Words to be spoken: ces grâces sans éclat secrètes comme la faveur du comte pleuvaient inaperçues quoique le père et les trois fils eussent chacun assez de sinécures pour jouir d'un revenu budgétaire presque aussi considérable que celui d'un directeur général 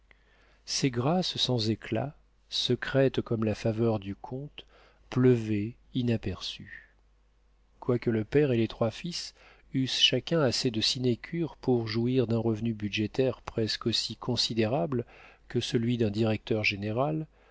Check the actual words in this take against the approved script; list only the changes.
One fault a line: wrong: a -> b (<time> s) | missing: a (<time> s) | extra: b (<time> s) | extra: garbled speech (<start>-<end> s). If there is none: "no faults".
no faults